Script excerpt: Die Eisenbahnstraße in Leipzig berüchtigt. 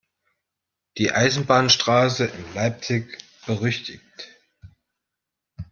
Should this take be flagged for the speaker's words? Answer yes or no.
no